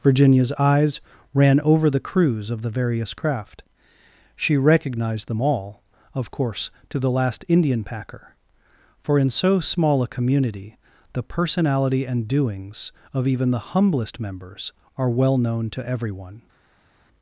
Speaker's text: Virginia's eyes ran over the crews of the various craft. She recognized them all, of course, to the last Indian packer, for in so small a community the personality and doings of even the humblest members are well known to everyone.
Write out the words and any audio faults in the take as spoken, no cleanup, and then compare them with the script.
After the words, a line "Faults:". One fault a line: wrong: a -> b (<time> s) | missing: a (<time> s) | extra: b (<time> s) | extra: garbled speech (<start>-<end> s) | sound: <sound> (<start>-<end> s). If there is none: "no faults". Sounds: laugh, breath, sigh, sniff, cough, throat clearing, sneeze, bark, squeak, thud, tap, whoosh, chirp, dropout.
Virginia's eyes ran over the crews of the various craft. She recognized them all, of course, to the last Indian packer, for in so small a community the personality and doings of even the humblest members are well known to everyone.
Faults:
no faults